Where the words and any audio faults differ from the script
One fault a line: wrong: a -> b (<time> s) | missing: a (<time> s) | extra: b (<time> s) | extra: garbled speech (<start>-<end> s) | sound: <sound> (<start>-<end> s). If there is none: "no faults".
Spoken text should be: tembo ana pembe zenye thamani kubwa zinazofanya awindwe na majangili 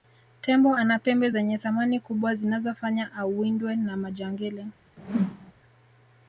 sound: whoosh (5.0-5.5 s)